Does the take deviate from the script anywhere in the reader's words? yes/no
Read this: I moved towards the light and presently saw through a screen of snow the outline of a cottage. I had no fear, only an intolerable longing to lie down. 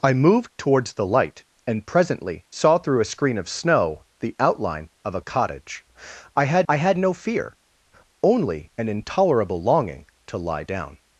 yes